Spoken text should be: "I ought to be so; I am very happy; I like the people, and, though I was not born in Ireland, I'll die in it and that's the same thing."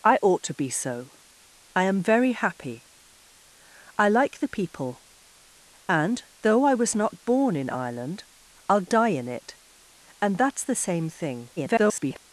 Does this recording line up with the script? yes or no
no